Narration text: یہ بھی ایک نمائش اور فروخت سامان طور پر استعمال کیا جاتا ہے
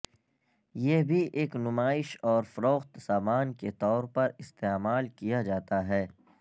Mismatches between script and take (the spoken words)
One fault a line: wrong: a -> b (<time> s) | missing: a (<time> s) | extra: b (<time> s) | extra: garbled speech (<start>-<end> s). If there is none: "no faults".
extra: کے (3.5 s)